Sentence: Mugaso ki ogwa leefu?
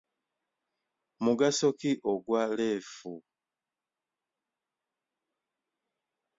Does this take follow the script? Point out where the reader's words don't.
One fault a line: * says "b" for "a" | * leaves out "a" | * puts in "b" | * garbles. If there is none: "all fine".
all fine